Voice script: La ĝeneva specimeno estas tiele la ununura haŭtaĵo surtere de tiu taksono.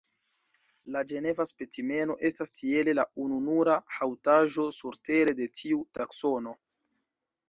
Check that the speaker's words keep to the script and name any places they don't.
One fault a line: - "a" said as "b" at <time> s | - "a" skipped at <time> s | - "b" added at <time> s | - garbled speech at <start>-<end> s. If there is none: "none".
none